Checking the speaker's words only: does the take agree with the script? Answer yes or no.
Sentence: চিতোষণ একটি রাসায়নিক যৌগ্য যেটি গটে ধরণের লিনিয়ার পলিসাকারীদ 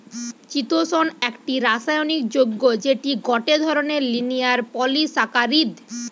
yes